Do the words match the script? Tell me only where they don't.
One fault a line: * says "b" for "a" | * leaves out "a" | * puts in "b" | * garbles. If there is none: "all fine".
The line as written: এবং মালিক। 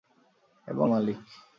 all fine